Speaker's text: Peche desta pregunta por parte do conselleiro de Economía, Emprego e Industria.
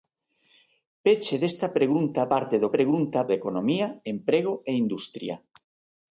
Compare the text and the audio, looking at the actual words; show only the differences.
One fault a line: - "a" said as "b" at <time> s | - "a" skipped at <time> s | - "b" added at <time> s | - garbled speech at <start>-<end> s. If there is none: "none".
- "por" skipped at 2.2 s
- "conselleiro" said as "pregunta" at 2.8 s